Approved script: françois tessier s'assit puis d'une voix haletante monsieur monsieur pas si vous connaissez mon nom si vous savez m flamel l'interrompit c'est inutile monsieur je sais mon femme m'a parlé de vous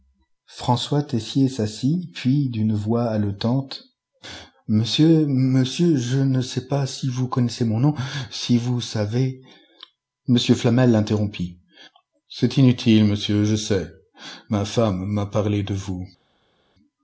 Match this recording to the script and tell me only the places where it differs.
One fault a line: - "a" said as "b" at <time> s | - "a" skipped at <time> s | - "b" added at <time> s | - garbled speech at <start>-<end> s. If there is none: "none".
- "je ne sais" added at 6.0 s
- "mon" said as "ma" at 14.5 s